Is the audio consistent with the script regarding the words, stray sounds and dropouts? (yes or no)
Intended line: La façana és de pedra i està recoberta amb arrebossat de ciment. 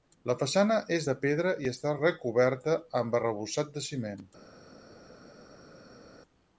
yes